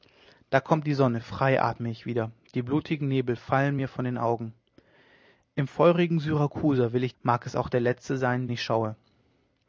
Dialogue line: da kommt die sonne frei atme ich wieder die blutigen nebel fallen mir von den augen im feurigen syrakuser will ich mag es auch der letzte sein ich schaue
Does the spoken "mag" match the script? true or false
true